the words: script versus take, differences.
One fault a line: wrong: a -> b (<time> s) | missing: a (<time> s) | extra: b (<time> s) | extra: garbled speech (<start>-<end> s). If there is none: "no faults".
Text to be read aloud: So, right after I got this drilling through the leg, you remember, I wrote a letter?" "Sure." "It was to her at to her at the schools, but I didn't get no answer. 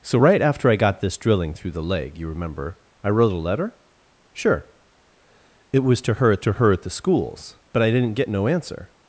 no faults